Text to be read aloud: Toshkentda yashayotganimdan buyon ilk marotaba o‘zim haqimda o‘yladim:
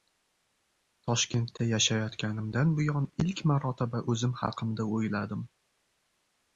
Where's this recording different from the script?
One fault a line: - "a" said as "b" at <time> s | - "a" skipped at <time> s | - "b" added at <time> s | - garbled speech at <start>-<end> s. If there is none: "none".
none